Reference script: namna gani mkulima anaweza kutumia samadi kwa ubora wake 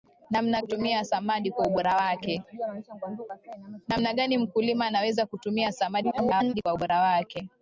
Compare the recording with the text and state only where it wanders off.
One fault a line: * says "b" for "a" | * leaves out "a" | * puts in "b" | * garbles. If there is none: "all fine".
* leaves out "gani mkulima anaweza"
* garbles